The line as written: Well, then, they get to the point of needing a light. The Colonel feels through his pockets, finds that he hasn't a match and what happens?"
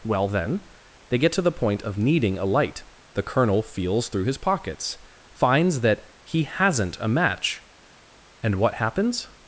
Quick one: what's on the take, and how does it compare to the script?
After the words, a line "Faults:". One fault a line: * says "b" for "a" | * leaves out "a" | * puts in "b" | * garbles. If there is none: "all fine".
Well, then, they get to the point of needing a light. The Colonel feels through his pockets, finds that he hasn't a match and what happens?"
Faults:
all fine